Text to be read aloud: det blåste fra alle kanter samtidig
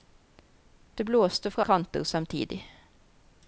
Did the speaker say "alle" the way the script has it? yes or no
no